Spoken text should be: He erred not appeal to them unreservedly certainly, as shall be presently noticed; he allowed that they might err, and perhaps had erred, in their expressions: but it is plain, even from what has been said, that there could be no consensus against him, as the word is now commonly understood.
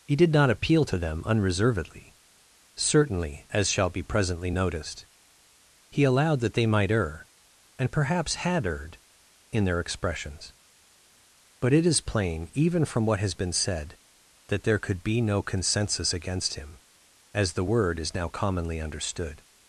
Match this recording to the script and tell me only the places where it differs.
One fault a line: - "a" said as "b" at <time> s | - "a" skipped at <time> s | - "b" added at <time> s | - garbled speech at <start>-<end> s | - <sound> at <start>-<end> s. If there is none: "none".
- "erred" said as "did" at 0.1 s